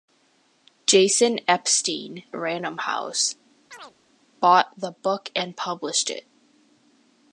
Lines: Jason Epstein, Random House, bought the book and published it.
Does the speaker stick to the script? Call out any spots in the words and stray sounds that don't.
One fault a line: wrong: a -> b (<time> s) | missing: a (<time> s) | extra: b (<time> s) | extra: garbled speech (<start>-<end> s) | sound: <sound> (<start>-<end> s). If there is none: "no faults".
sound: chirp (3.7-4.0 s)